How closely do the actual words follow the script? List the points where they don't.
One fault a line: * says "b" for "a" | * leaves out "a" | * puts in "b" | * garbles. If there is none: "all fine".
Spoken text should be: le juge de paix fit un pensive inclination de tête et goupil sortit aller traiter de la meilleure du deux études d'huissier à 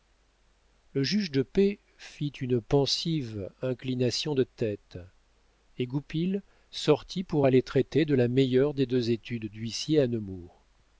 * says "une" for "un"
* puts in "pour"
* says "des" for "du"